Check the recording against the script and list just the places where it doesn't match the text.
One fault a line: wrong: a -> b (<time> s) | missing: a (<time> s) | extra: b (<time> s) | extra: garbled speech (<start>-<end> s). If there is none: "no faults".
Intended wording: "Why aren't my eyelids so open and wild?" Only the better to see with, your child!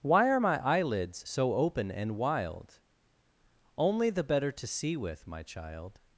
wrong: aren't -> are (0.3 s)
wrong: your -> my (5.3 s)